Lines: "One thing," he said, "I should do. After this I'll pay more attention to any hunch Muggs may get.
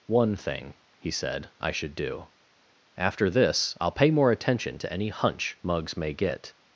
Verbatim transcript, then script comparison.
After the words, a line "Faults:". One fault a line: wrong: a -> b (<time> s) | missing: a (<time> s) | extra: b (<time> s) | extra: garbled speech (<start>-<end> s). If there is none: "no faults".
"One thing," he said, "I should do. After this I'll pay more attention to any hunch Muggs may get.
Faults:
no faults